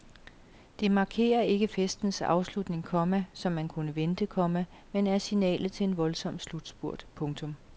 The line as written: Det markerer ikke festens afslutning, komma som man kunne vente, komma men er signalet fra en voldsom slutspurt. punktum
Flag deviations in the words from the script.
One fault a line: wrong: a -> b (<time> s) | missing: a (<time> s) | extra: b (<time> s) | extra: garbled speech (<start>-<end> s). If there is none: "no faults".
wrong: fra -> til (5.7 s)